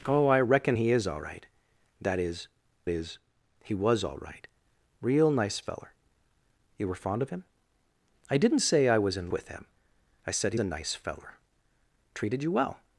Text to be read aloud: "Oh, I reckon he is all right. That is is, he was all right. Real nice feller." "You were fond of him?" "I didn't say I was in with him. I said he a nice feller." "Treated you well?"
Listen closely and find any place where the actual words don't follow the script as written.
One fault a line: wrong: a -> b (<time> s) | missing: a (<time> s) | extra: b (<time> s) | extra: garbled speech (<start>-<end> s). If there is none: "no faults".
no faults